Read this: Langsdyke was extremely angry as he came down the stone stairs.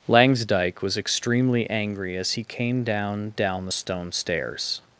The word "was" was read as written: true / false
true